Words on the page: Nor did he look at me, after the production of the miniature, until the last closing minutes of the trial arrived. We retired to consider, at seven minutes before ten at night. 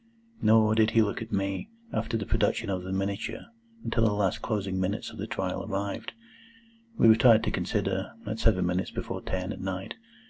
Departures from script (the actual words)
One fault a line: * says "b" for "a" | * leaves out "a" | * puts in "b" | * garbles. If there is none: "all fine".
all fine